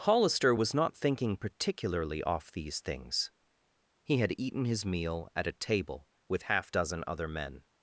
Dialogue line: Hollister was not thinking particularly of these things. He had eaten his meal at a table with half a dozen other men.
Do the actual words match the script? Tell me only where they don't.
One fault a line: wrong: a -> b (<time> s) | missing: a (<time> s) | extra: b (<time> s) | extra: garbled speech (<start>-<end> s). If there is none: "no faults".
wrong: of -> off (2.2 s)
missing: a (6.7 s)